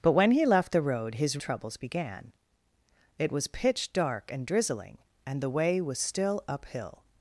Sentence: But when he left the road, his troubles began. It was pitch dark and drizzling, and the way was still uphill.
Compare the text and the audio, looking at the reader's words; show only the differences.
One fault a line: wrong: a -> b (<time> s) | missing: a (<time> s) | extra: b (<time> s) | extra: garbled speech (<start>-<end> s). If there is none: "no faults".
no faults